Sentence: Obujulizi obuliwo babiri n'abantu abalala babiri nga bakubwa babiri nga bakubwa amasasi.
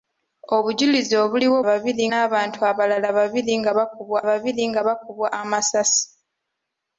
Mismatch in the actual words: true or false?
false